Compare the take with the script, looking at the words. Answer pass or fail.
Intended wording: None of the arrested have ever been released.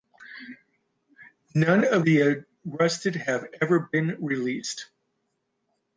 pass